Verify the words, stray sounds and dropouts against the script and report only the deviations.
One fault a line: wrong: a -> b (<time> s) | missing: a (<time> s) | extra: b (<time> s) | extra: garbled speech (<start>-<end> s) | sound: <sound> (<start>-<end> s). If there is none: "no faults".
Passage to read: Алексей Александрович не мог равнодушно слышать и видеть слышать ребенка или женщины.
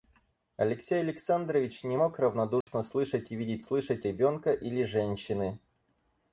sound: dropout (2.6-2.7 s)